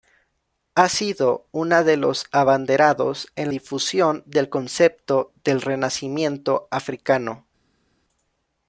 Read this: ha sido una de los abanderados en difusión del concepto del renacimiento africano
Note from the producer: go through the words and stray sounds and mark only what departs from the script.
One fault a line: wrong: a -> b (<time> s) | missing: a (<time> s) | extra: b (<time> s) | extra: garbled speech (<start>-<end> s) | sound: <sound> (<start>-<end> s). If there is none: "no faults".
no faults